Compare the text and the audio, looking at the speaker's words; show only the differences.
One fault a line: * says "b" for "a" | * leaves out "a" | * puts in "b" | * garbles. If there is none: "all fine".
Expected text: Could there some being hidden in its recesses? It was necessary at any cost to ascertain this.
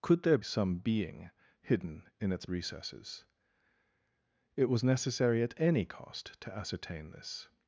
all fine